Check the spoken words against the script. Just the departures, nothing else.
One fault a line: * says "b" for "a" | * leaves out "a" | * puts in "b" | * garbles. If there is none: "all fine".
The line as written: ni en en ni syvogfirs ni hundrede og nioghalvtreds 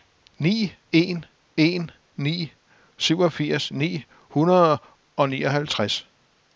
all fine